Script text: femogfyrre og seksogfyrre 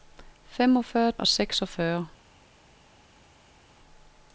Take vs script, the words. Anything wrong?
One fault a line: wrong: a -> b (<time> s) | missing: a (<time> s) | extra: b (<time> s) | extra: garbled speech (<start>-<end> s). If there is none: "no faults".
no faults